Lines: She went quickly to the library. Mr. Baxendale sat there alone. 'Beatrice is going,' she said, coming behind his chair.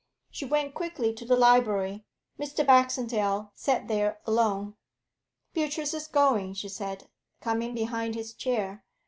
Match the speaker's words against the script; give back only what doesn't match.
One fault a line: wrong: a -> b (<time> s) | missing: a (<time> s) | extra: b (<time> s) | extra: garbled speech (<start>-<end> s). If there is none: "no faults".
no faults